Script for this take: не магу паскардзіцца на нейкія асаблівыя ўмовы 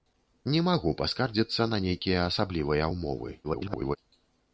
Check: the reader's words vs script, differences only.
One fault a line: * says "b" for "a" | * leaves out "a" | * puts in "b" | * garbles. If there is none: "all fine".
* garbles